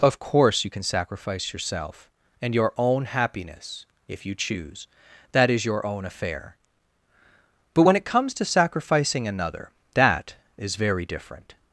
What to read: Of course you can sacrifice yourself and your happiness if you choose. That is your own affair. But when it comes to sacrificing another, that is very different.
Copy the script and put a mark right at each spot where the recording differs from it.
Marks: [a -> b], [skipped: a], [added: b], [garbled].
Of course you can sacrifice yourself and your [added: own] happiness if you choose. That is your own affair. But when it comes to sacrificing another, that is very different.